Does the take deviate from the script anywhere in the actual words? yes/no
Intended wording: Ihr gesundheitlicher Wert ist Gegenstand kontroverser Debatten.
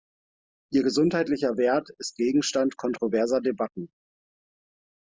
no